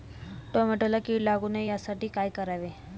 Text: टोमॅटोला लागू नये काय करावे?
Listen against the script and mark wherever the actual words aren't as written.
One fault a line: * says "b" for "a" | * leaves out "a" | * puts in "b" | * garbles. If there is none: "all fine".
* puts in "कीड"
* puts in "यासाठी"